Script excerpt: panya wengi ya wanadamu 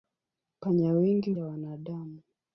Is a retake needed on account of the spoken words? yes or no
no